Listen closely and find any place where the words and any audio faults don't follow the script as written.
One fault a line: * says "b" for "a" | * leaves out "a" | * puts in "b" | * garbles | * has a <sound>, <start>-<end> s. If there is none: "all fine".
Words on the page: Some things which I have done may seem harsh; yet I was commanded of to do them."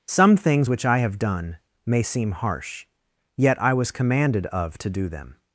all fine